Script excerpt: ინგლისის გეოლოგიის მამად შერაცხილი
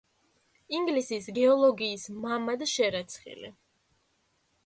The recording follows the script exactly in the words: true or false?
true